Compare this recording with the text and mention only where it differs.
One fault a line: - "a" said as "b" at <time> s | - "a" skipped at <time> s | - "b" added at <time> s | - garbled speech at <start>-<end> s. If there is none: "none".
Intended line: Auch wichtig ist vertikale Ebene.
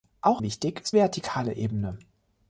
none